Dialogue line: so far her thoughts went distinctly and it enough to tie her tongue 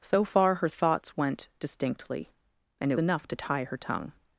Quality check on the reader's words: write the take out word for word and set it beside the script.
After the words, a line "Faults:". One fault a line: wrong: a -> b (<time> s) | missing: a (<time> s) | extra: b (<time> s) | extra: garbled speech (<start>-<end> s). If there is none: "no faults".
so far her thoughts went distinctly and it enough to tie her tongue
Faults:
no faults